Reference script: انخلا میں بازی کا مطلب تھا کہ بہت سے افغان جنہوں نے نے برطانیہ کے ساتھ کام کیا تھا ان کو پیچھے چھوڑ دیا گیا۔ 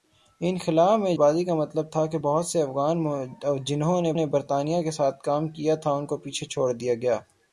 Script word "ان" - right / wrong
right